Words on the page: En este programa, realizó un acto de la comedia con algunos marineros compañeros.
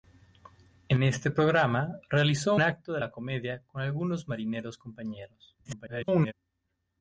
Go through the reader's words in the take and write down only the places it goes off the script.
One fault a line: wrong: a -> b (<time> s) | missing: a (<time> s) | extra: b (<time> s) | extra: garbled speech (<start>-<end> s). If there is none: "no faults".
missing: un (2.5 s)
extra: garbled speech (5.6-6.3 s)